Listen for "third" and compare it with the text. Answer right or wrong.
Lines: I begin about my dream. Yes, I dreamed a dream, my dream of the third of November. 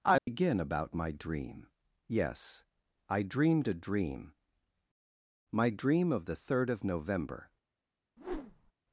right